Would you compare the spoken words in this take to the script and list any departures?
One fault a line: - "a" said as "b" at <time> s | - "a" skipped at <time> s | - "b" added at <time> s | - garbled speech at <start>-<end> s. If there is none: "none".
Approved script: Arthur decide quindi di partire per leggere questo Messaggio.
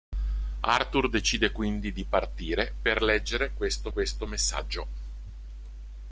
- "questo" added at 3.9 s